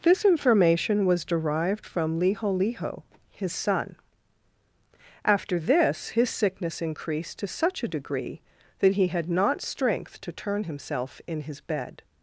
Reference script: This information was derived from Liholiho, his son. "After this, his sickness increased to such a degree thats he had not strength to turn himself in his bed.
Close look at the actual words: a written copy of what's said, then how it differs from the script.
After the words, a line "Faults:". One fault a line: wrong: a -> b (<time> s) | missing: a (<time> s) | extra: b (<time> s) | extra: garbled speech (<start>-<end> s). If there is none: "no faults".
This information was derived from Liholiho, his son. "After this, his sickness increased to such a degree that he had not strength to turn himself in his bed.
Faults:
wrong: thats -> that (8.8 s)